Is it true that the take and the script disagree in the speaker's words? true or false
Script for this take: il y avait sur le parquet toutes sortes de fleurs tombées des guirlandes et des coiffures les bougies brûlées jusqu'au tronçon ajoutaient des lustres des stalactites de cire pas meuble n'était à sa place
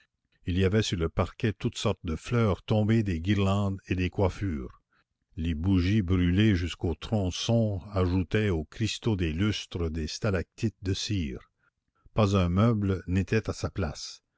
true